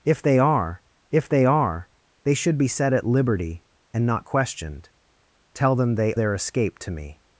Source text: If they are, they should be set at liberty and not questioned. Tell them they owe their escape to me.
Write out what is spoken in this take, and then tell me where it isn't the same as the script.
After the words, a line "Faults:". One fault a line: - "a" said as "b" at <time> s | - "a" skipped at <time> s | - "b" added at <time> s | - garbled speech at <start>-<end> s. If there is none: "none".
If they are if they are, they should be set at liberty and not questioned. Tell them they their escape to me.
Faults:
- "if" added at 1.1 s
- "are they" added at 1.5 s
- "owe" skipped at 6.1 s